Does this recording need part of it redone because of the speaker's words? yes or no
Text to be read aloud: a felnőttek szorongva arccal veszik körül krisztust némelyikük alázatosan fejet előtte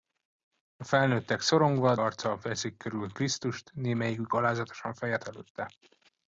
no